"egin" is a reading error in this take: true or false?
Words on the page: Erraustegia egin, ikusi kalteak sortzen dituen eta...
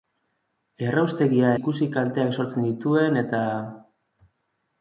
true